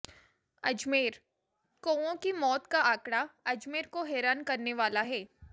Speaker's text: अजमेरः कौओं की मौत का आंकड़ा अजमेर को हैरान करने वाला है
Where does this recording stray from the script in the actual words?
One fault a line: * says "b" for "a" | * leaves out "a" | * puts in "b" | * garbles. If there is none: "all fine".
all fine